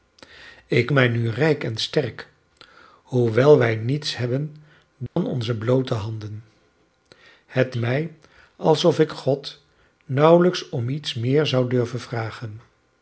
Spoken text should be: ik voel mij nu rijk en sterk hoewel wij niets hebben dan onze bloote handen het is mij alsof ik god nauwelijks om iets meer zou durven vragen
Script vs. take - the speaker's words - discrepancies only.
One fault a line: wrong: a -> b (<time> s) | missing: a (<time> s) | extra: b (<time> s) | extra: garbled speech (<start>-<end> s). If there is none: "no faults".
missing: voel (0.9 s)
missing: is (7.8 s)